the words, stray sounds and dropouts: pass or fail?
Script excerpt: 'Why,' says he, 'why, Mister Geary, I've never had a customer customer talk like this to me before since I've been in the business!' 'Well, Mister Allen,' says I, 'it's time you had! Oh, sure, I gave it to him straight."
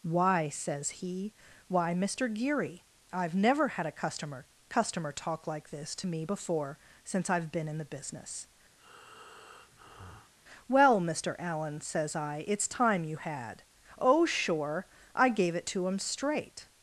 fail